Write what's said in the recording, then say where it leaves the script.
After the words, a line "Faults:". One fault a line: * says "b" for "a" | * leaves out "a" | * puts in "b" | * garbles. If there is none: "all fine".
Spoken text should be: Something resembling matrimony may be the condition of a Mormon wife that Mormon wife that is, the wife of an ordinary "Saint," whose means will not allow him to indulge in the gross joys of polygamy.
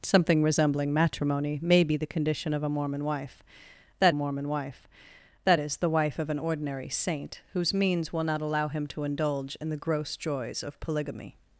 Something resembling matrimony may be the condition of a Mormon wife that Mormon wife that is, the wife of an ordinary "Saint," whose means will not allow him to indulge in the gross joys of polygamy.
Faults:
all fine